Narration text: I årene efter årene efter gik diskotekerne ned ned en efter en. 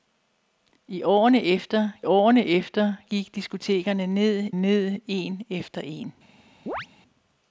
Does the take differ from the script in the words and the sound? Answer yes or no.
yes